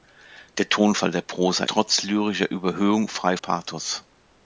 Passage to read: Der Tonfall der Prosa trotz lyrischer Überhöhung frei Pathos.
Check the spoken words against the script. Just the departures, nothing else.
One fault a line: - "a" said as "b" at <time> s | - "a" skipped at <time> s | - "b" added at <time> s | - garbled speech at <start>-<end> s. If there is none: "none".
none